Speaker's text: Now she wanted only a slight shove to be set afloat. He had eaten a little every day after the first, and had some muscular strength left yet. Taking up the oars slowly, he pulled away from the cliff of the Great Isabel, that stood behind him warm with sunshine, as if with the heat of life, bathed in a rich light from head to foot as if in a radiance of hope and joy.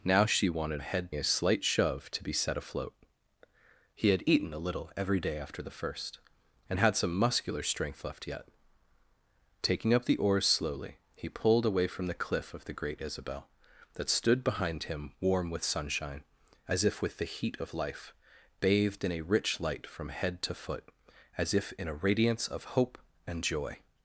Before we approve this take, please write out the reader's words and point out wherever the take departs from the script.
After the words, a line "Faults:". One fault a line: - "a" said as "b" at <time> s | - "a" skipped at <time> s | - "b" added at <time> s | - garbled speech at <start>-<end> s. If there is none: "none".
Now she wanted head a slight shove to be set afloat. He had eaten a little every day after the first, and had some muscular strength left yet. Taking up the oars slowly, he pulled away from the cliff of the Great Isabel, that stood behind him warm with sunshine, as if with the heat of life, bathed in a rich light from head to foot as if in a radiance of hope and joy.
Faults:
- "only" said as "head" at 0.8 s